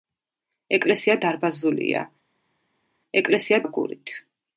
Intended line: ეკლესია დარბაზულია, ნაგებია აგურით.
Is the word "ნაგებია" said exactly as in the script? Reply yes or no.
no